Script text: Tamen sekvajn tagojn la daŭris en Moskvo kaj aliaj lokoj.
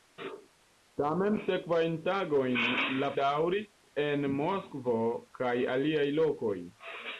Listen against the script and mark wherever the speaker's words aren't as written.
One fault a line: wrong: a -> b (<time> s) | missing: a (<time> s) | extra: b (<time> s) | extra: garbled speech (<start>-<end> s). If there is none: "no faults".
no faults